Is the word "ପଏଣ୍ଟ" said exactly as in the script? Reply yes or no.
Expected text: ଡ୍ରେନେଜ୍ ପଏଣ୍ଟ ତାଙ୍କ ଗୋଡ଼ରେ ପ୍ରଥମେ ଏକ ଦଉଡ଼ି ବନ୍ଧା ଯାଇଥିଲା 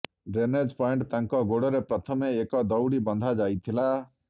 yes